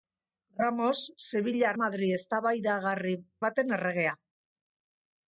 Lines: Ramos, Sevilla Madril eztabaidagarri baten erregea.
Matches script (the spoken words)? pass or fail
pass